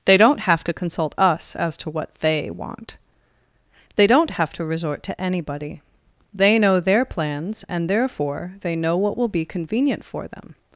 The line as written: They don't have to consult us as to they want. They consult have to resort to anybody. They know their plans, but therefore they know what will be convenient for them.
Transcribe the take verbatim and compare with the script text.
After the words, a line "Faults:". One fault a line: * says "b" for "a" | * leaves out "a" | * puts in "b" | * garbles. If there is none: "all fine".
They don't have to consult us as to what they want. They don't have to resort to anybody. They know their plans, and therefore they know what will be convenient for them.
Faults:
* puts in "what"
* says "don't" for "consult"
* says "and" for "but"